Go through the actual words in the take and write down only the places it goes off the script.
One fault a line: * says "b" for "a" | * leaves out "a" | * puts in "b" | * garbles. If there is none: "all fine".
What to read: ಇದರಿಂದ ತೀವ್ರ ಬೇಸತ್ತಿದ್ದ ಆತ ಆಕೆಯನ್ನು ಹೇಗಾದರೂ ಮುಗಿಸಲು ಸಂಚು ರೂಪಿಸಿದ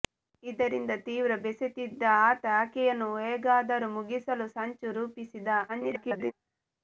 * garbles